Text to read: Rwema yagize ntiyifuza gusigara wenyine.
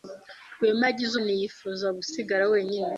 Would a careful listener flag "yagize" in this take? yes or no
no